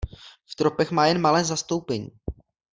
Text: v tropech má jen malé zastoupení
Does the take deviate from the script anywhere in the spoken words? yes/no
no